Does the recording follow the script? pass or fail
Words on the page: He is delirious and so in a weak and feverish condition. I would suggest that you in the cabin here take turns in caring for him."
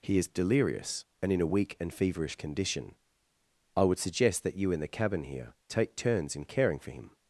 fail